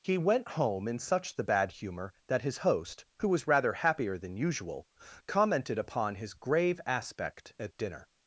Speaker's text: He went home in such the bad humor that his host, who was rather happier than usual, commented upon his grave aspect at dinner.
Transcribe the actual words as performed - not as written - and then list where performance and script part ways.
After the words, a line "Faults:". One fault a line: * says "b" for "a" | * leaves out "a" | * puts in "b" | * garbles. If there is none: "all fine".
He went home in such the bad humor that his host, who was rather happier than usual, commented upon his grave aspect at dinner.
Faults:
all fine